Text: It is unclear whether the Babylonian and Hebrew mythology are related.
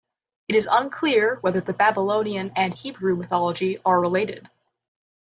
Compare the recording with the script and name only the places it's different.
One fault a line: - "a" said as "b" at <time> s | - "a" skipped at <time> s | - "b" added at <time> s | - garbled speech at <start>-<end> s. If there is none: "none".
none